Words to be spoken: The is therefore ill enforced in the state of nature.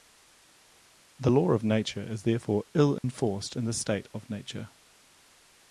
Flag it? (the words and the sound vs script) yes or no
yes